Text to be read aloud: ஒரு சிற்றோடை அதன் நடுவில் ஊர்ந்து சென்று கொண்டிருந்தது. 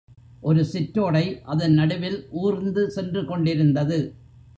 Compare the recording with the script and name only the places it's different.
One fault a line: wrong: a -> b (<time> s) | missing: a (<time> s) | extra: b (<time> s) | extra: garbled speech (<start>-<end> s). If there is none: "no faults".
no faults